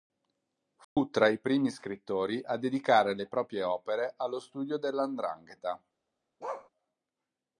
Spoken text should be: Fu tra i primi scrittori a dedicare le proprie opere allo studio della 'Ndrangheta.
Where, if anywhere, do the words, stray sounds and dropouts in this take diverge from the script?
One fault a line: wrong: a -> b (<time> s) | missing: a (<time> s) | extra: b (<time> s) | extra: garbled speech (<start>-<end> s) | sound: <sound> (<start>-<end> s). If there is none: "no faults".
sound: dropout (0.8-1.0 s)
sound: bark (6.4-6.7 s)